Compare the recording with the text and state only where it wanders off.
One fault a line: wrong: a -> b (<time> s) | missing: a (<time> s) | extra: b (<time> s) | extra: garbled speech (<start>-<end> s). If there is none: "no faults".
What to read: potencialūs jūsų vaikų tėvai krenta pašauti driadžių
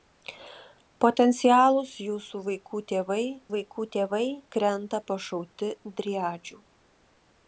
extra: vaikų tėvai (3.5 s)